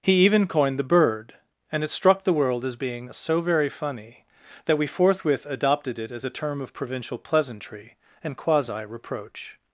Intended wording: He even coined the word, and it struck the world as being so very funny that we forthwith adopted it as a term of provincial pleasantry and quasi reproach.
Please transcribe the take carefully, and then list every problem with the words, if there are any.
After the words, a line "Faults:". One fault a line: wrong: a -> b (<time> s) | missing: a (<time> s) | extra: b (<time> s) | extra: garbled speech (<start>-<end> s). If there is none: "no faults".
He even coined the bird, and it struck the world as being so very funny that we forthwith adopted it as a term of provincial pleasantry and quasi reproach.
Faults:
wrong: word -> bird (0.8 s)